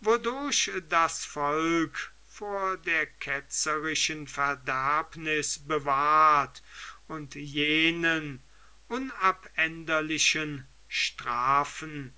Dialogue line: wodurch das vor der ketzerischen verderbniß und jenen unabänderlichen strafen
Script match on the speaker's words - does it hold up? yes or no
no